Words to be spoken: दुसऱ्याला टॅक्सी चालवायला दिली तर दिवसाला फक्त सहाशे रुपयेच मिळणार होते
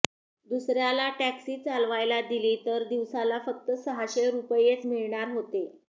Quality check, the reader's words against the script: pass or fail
pass